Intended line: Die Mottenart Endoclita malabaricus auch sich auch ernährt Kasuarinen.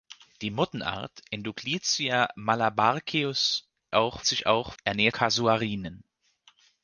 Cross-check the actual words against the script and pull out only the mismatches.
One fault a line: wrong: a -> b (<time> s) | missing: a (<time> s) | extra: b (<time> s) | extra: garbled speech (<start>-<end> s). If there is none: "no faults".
no faults